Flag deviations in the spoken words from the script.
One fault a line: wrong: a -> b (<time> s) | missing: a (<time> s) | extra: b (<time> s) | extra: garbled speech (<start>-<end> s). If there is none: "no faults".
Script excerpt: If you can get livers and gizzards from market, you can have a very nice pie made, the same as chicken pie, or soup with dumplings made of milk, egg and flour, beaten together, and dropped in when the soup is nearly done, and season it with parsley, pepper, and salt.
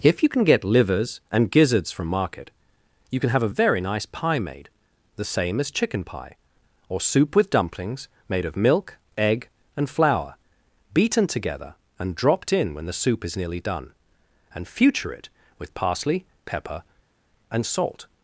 wrong: season -> future (14.7 s)